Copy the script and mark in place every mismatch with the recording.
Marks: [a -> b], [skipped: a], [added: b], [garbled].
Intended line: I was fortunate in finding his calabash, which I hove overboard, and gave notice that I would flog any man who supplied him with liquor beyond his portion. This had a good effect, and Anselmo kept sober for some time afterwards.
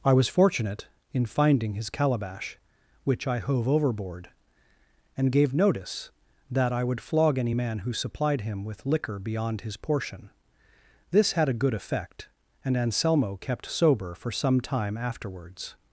I was fortunate in finding his calabash, which I hove overboard, and gave notice that I would flog any man who supplied him with liquor beyond his portion. This had a good effect, and Anselmo kept sober for some time afterwards.